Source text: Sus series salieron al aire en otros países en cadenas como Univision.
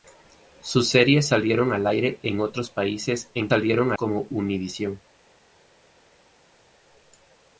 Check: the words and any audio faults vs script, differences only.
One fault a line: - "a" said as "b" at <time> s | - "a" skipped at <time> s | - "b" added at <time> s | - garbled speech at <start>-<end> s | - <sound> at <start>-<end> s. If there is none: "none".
- "cadenas" said as "salieron" at 3.5 s